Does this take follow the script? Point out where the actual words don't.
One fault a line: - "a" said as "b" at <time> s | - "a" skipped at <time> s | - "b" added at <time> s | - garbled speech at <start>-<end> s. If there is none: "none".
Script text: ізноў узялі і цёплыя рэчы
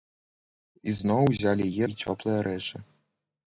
none